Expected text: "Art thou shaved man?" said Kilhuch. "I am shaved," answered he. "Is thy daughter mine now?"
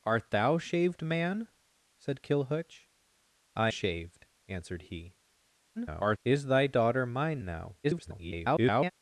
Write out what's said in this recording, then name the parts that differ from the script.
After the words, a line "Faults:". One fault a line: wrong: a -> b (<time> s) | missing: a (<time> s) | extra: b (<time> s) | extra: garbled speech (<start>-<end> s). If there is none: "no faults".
"Art thou shaved man?" said Kilhuch. "I shaved," answered he. [garbled] "Is thy daughter mine now?" [garbled]
Faults:
missing: am (3.7 s)
extra: garbled speech (5.8-6.2 s)
extra: garbled speech (7.8-8.9 s)